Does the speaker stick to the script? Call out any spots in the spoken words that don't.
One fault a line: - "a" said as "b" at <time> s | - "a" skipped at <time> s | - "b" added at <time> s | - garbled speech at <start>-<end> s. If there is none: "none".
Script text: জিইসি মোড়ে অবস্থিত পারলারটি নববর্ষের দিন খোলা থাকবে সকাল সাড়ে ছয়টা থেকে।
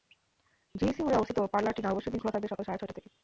none